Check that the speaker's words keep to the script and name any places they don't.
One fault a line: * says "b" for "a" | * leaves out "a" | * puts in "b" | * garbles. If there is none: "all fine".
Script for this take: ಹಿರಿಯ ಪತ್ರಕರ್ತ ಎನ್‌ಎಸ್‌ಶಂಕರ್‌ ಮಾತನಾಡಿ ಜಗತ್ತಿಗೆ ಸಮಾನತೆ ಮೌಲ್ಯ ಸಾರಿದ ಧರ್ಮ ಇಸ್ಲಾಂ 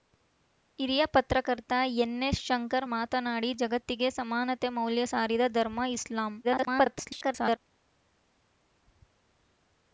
* garbles